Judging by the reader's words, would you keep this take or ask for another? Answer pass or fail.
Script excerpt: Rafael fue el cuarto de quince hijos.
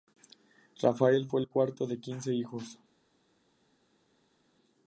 pass